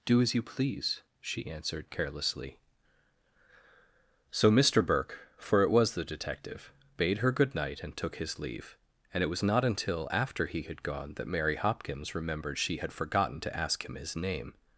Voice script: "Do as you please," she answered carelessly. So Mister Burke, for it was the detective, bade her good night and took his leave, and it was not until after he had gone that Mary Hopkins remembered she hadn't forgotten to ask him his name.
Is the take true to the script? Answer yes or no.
no